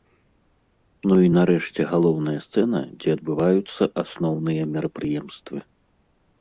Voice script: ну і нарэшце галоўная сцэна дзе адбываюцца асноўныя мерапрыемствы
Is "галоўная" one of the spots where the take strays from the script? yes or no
no